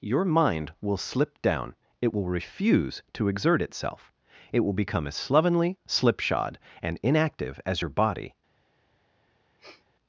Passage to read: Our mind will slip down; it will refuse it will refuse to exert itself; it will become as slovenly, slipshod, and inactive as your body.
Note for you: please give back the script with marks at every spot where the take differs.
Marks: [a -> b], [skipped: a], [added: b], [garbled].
[Our -> Your] mind will slip down; it will refuse [skipped: it will refuse] to exert itself; it will become as slovenly, slipshod, and inactive as your body.